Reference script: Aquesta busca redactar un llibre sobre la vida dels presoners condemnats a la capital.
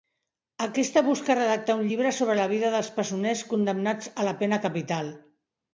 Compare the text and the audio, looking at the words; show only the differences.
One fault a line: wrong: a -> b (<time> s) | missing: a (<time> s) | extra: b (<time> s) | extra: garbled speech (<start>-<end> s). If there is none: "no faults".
extra: pena (4.4 s)